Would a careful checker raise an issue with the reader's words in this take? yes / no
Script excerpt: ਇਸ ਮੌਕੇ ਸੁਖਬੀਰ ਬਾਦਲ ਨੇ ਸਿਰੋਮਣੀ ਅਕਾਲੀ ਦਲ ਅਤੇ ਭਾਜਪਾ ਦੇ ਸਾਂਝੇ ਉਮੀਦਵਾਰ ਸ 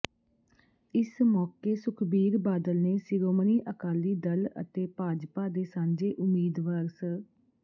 no